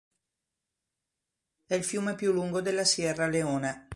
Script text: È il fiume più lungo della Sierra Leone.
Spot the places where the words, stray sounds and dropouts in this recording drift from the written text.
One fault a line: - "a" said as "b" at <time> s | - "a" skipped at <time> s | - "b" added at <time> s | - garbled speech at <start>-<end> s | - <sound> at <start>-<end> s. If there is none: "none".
none